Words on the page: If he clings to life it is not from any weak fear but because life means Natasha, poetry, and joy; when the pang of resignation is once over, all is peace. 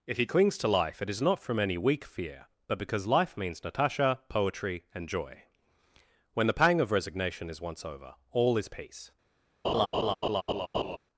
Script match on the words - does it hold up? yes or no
yes